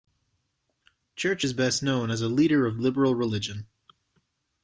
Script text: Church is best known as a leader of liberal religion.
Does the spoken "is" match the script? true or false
true